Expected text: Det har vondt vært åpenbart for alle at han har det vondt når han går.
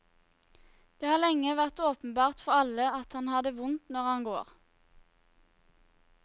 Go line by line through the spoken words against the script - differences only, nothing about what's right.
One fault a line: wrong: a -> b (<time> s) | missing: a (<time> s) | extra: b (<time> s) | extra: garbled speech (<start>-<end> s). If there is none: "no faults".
wrong: vondt -> lenge (1.2 s)